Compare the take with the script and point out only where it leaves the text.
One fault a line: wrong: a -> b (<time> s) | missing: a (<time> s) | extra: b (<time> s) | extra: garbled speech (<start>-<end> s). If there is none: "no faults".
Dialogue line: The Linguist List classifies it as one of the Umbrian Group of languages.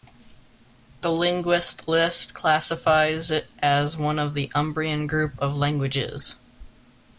no faults